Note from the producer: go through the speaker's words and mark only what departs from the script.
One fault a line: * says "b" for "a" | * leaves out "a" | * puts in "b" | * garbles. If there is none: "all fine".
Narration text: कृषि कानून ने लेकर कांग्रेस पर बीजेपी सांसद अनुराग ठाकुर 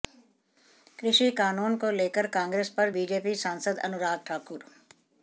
* says "को" for "ने"